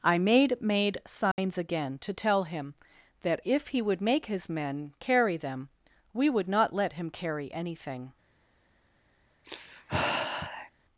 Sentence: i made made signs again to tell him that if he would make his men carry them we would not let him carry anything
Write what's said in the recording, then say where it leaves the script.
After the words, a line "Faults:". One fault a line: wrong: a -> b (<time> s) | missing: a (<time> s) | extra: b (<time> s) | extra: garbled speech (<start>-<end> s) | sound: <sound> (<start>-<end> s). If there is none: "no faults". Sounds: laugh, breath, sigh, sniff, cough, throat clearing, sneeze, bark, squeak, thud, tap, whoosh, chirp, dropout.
i made made signs again to tell him that if he would make his men carry them we would not let him carry anything
Faults:
sound: dropout (1.3-1.4 s)
sound: sigh (9.4-10.7 s)